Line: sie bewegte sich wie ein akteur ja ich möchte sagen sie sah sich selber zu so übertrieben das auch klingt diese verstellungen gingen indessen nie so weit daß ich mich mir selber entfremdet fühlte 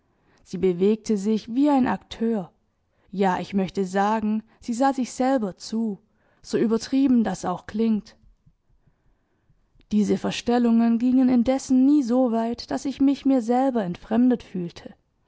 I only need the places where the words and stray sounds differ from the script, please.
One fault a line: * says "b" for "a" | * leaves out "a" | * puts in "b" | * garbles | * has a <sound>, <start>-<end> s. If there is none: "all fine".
all fine